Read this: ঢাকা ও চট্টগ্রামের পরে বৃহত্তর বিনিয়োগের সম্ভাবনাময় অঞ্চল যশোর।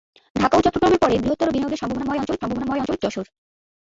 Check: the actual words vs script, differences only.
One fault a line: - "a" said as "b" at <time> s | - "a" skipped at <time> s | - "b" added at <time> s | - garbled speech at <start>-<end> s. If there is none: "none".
- "সম্ভাবনাময় অঞ্চল" added at 2.4 s